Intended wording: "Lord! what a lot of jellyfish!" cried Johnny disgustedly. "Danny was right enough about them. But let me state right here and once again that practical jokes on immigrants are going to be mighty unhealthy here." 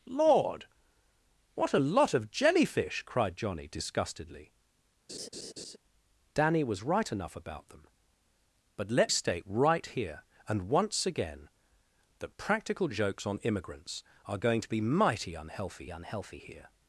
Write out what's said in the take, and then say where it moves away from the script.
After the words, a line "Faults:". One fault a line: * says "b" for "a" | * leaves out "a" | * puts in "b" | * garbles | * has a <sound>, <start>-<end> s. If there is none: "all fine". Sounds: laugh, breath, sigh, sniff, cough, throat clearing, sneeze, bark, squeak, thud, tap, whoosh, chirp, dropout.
"Lord! what a lot of jellyfish!" cried Johnny disgustedly. "Danny was right enough about them. But let state right here and once again that practical jokes on immigrants are going to be mighty unhealthy unhealthy here."
Faults:
* has a laugh, 5.1-5.8 s
* leaves out "me"
* puts in "unhealthy"